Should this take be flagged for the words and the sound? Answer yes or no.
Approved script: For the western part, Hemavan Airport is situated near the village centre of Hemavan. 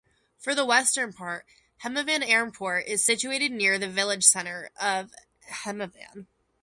no